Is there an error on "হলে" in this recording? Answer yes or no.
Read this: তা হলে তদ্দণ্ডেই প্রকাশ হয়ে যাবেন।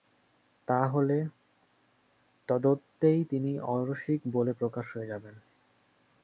no